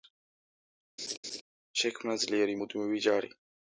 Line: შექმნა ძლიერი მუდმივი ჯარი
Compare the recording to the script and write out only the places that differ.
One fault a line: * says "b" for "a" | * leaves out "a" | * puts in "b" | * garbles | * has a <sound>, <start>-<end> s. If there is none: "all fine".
* has a laugh, 1.0-1.4 s